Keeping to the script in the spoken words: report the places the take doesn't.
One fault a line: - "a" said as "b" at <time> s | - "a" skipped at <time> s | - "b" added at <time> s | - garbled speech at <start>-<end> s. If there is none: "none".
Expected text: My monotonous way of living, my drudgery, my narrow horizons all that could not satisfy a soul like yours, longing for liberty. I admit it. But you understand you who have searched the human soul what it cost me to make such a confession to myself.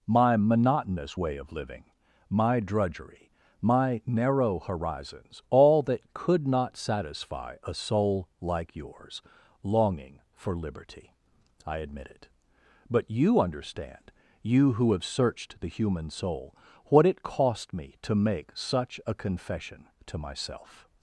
none